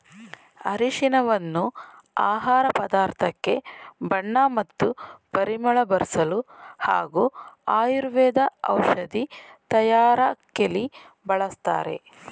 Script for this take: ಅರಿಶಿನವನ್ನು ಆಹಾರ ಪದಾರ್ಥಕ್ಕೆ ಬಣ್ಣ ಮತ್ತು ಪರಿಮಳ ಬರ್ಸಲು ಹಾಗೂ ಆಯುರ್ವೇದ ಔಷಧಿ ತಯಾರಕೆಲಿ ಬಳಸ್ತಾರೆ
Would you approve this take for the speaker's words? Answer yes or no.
yes